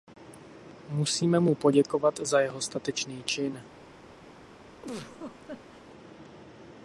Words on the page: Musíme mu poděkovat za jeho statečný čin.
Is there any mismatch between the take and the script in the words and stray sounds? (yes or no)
yes